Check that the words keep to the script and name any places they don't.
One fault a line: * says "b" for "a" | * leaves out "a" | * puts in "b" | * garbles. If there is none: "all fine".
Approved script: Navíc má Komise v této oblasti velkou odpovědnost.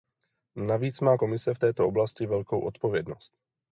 all fine